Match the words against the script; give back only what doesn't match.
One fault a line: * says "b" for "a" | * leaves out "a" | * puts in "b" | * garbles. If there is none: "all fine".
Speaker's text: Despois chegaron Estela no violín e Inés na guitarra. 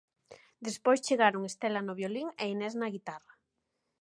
all fine